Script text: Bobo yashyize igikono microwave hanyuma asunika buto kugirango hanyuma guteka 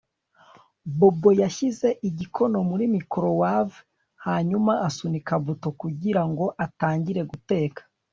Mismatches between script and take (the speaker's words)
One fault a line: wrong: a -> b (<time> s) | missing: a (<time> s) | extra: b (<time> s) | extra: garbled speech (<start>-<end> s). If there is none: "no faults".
extra: muri (2.7 s)
wrong: hanyuma -> atangire (6.7 s)